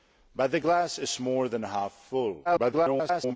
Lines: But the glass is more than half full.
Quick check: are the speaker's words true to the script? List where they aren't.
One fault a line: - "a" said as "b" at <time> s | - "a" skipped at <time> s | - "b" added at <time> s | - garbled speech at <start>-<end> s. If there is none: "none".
- garbled speech at 2.4-3.4 s